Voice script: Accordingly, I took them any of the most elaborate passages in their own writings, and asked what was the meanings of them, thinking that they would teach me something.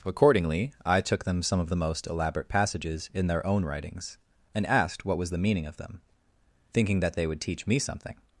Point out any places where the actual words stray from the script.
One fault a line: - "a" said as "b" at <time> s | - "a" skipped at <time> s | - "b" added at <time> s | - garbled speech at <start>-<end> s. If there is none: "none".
- "any" said as "some" at 1.4 s
- "meanings" said as "meaning" at 5.4 s